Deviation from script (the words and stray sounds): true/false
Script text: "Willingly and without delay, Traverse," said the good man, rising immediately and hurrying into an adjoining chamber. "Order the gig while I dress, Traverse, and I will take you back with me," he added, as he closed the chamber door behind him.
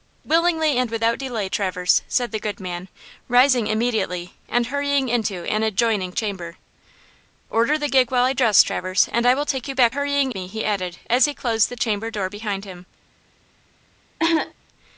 true